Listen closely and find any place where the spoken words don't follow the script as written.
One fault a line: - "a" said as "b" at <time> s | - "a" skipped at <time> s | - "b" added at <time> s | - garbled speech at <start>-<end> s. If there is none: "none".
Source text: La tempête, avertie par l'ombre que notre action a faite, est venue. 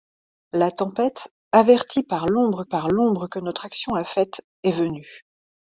- "par l'ombre" added at 2.6 s